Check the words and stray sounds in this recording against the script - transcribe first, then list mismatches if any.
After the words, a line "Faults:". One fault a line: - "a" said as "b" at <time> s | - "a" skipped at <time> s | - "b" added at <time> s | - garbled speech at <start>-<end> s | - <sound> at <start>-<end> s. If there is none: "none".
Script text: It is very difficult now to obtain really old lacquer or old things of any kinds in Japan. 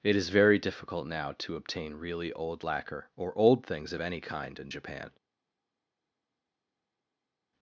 It is very difficult now to obtain really old lacquer or old things of any kind in Japan.
Faults:
- "kinds" said as "kind" at 4.2 s